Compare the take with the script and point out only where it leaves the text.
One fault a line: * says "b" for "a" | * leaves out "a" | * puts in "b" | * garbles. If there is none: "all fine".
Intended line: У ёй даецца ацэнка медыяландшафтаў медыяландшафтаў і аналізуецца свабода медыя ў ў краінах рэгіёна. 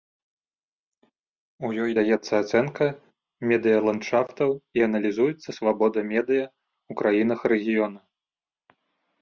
* leaves out "медыяландшафтаў"
* leaves out "ў"